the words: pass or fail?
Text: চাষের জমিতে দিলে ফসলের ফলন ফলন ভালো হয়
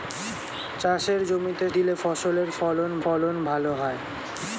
pass